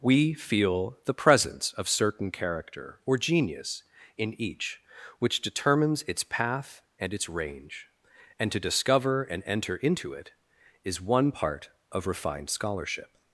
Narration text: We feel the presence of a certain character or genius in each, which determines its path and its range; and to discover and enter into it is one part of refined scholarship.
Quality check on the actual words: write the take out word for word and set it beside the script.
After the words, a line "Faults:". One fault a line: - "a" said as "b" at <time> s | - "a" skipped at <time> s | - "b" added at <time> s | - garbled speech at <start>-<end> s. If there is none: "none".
We feel the presence of certain character or genius in each, which determines its path and its range; and to discover and enter into it is one part of refined scholarship.
Faults:
- "a" skipped at 1.9 s